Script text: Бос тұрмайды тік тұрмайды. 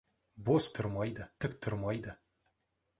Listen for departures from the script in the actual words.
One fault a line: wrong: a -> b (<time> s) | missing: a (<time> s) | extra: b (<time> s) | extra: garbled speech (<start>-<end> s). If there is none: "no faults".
no faults